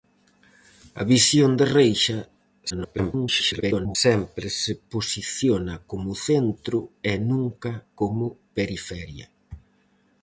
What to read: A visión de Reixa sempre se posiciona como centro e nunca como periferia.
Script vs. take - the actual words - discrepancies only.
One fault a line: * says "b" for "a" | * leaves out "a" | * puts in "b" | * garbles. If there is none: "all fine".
* garbles